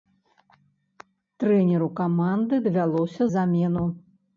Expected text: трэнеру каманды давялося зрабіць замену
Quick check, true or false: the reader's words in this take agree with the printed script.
false